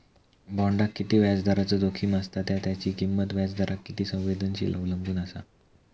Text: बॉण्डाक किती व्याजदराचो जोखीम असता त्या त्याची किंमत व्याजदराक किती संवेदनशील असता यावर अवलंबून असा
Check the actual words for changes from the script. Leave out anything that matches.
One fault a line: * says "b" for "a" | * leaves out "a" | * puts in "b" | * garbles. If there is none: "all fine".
* leaves out "असता यावर"